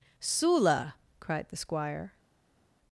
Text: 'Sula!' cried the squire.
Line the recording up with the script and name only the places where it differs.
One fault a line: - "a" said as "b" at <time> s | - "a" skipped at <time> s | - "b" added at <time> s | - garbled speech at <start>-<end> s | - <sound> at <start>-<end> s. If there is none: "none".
none